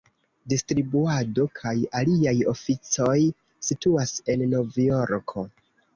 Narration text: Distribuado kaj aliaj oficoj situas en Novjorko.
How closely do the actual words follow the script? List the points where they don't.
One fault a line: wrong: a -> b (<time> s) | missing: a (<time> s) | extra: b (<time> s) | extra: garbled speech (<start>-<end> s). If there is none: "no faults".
no faults